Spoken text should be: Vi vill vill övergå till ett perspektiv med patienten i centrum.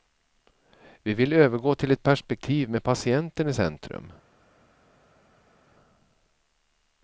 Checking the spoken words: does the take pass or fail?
fail